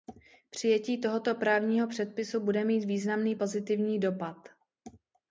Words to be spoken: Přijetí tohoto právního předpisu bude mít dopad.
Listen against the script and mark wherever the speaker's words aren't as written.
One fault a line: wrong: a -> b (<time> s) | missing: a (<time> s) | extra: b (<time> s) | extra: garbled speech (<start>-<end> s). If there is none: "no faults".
extra: významný pozitivní (2.9 s)